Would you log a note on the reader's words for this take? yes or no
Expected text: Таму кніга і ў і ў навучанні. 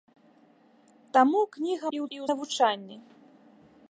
no